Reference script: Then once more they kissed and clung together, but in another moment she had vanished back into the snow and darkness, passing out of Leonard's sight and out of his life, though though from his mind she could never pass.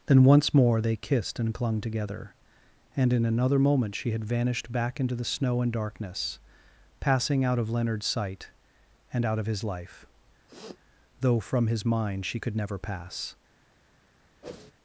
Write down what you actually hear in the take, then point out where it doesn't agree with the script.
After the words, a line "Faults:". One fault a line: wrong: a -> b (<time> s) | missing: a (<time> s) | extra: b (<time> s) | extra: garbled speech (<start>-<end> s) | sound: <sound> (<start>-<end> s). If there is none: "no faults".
Then once more they kissed and clung together, and in another moment she had vanished back into the snow and darkness, passing out of Leonard's sight and out of his life, though from his mind she could never pass.
Faults:
wrong: but -> and (3.0 s)
sound: sniff (10.5-10.8 s)
missing: though (11.4 s)
sound: whoosh (14.4-14.7 s)